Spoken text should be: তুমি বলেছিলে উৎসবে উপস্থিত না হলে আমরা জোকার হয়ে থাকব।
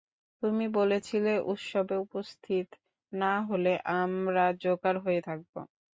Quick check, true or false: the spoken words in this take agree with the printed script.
true